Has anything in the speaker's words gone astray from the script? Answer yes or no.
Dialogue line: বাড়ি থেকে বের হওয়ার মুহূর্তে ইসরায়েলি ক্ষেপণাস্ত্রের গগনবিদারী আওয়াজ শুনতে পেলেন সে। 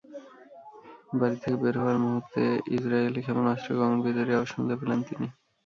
yes